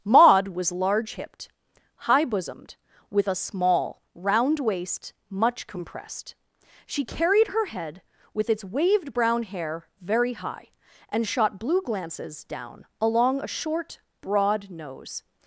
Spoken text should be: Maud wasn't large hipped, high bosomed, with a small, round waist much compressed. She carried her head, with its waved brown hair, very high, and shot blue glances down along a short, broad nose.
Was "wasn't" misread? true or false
true